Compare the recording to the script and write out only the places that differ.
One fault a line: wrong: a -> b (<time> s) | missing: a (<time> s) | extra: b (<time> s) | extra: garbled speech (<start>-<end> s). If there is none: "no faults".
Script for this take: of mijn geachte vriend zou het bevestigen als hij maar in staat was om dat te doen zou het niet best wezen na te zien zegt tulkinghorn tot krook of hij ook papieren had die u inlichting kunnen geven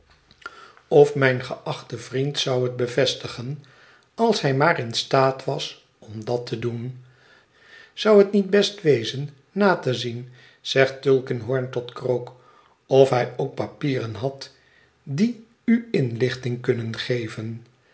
no faults